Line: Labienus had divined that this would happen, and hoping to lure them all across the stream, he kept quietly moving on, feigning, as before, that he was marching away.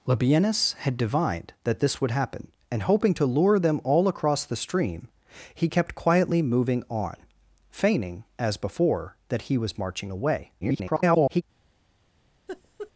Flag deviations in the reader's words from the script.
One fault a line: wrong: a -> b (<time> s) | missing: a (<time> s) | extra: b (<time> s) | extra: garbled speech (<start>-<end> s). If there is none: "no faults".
extra: garbled speech (10.6-11.4 s)